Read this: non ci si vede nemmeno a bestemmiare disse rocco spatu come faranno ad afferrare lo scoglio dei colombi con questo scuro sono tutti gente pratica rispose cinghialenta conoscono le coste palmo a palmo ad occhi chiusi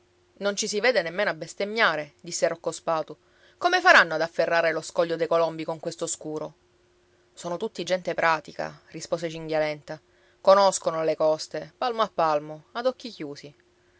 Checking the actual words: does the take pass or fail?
pass